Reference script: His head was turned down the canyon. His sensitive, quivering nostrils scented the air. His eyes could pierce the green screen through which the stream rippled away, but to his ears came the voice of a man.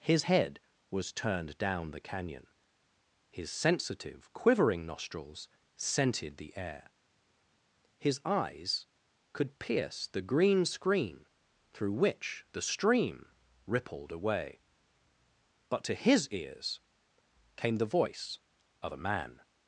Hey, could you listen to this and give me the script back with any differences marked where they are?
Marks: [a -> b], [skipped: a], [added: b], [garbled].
His head was turned down the canyon. His sensitive, quivering nostrils scented the air. His eyes could pierce the green screen through which the stream rippled away, but to his ears came the voice of a man.